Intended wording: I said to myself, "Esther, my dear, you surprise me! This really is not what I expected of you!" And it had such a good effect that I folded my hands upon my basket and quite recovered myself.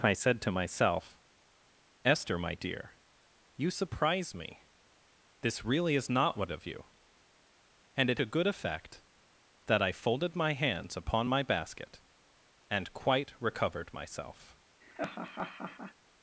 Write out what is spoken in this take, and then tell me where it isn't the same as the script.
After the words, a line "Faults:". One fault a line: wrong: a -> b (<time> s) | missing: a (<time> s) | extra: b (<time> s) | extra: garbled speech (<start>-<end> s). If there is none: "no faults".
I said to myself, "Esther, my dear, you surprise me! This really is not what of you!" And it a good effect that I folded my hands upon my basket and quite recovered myself.
Faults:
missing: I expected (6.5 s)
missing: had such (8.2 s)